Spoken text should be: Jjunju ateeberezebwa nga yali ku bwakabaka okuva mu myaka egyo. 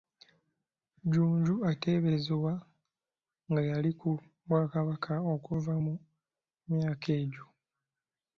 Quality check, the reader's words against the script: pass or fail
pass